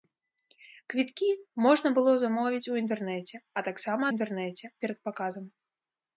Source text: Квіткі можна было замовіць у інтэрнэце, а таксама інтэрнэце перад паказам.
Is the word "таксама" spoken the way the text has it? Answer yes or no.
yes